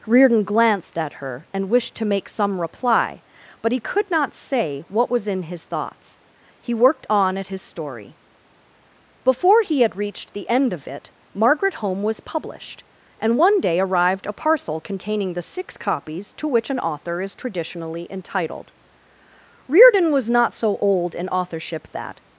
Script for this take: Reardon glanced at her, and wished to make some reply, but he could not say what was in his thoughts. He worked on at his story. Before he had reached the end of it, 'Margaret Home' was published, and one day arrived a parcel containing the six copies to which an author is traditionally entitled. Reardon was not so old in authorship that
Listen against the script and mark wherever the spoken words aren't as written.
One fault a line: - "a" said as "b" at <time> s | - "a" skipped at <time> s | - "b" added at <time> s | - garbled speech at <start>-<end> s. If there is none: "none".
none